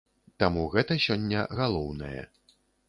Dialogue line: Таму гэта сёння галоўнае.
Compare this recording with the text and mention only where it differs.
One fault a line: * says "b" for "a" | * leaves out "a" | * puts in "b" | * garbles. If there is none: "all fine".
all fine